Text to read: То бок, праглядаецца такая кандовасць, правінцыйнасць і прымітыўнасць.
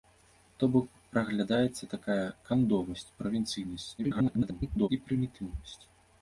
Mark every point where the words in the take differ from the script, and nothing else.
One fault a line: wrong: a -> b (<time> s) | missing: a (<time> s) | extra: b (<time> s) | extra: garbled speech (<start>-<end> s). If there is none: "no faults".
extra: garbled speech (4.0-4.9 s)